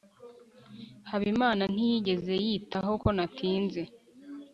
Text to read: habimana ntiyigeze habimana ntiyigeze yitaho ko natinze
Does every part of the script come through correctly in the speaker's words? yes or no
no